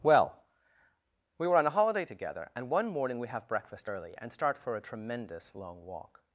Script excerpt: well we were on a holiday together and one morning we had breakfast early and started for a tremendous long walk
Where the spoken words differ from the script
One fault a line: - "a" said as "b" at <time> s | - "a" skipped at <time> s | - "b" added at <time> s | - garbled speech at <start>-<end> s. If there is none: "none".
- "had" said as "have" at 3.3 s
- "started" said as "start" at 4.3 s